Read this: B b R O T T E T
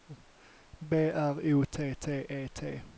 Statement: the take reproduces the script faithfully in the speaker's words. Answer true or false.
false